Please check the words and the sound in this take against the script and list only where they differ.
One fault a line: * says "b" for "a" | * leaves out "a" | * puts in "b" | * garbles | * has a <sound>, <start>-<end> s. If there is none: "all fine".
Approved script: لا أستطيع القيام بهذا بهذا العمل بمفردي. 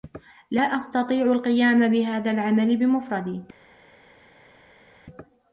* leaves out "بهذا"